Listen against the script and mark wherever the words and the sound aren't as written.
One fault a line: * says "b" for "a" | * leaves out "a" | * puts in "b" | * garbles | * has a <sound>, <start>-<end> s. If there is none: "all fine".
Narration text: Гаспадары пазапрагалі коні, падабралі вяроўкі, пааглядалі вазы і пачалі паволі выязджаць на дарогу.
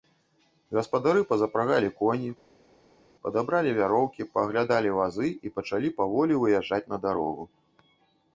all fine